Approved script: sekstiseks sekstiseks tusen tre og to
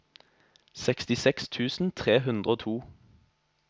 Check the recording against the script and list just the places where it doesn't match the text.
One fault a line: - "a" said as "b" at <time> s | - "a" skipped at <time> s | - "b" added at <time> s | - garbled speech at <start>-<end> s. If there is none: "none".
- "sekstiseks" skipped at 1.5 s
- "hundre" added at 2.2 s